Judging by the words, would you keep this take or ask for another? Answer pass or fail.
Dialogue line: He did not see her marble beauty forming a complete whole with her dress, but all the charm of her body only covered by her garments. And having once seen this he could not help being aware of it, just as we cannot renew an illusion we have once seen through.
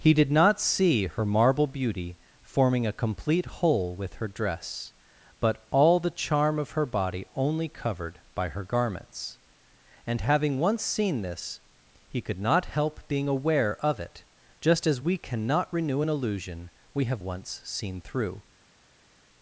pass